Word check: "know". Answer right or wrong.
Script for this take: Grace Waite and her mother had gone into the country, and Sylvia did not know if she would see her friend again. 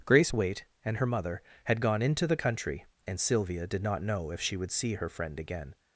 right